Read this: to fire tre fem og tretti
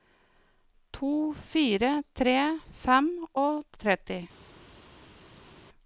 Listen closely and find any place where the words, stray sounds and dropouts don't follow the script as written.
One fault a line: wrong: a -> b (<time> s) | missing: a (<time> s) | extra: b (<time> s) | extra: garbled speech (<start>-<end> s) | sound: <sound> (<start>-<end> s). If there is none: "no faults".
no faults